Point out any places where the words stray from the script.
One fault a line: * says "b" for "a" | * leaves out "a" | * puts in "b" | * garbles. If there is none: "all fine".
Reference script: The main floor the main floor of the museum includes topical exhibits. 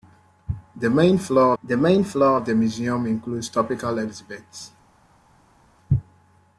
all fine